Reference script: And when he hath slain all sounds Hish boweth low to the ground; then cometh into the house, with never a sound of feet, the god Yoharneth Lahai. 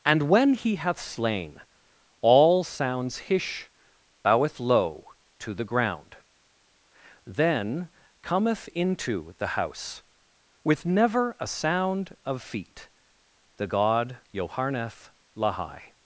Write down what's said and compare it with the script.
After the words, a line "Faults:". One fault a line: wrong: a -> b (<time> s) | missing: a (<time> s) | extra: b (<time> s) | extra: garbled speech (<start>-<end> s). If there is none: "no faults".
And when he hath slain all sounds Hish boweth low to the ground; then cometh into the house, with never a sound of feet, the god Yoharneth Lahai.
Faults:
no faults